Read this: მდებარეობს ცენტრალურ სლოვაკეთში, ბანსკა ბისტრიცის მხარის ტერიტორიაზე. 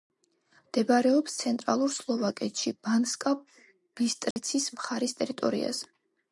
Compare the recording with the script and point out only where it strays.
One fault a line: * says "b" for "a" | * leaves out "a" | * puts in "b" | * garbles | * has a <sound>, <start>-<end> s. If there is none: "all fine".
* has a dropout, 4.3-4.4 s